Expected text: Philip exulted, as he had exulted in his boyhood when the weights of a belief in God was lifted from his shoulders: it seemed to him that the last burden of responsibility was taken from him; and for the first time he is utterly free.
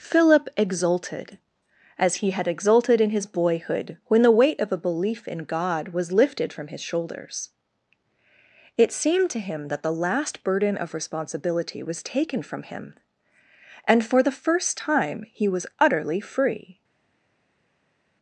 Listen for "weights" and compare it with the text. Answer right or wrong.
wrong